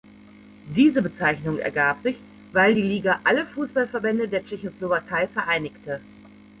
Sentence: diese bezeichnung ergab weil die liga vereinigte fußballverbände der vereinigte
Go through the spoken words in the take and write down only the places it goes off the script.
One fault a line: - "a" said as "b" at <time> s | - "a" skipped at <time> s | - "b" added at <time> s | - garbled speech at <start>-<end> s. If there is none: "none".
- "sich" added at 2.0 s
- "vereinigte" said as "alle" at 3.2 s
- "tschechoslowakei" added at 4.4 s